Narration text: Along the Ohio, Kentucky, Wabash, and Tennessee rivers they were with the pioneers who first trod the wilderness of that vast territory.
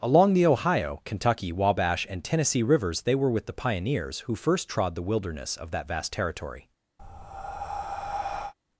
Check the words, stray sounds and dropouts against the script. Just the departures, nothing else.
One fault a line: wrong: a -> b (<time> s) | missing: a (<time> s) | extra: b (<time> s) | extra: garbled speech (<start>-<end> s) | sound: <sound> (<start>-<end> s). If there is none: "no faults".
sound: breath (7.0-8.5 s)